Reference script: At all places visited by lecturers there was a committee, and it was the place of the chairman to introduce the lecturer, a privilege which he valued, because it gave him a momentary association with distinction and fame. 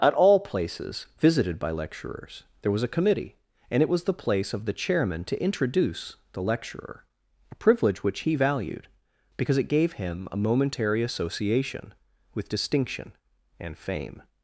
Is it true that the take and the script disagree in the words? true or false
false